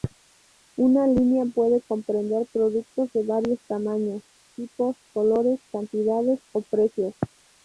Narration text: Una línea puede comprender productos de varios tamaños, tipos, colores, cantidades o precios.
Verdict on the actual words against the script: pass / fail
pass